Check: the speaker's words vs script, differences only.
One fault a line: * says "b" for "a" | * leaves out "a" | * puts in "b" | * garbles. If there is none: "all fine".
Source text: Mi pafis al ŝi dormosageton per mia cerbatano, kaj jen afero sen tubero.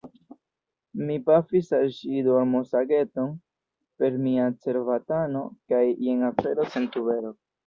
all fine